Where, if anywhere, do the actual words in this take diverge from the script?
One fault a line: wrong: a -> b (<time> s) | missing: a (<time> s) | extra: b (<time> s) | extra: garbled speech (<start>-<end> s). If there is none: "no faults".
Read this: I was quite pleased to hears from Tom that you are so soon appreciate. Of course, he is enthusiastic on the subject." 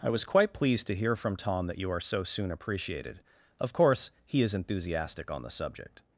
wrong: hears -> hear (0.9 s)
wrong: appreciate -> appreciated (2.5 s)